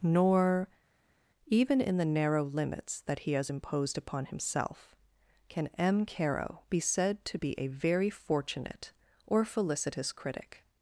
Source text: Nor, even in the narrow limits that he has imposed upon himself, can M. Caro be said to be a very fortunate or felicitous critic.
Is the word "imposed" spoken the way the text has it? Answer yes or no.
yes